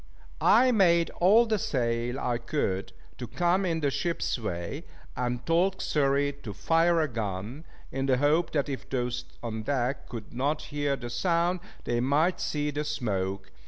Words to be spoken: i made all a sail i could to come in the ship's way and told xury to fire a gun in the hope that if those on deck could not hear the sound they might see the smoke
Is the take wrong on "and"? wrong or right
right